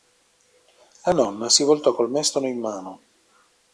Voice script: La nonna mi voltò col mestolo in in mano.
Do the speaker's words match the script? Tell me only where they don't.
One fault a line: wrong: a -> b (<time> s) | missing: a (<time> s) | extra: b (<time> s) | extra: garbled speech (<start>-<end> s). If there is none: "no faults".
wrong: mi -> si (1.5 s)
missing: in (2.6 s)